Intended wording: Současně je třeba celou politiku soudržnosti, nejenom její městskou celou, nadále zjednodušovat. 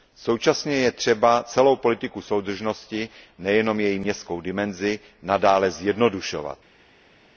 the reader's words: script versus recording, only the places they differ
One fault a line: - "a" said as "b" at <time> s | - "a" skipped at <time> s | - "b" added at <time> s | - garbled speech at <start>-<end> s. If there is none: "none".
- "celou" said as "dimenzi" at 4.4 s